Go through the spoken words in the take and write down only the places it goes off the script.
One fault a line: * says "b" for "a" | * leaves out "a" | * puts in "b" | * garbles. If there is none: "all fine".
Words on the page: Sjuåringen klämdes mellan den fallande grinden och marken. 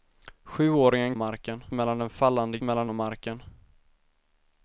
* says "marken" for "klämdes"
* says "mellan" for "grinden"